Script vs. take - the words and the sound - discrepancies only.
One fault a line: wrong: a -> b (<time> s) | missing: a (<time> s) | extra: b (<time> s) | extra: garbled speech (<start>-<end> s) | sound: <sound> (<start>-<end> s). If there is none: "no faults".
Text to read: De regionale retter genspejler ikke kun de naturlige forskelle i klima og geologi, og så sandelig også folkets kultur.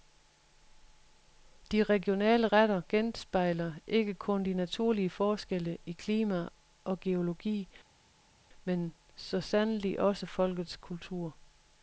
wrong: og -> men (8.6 s)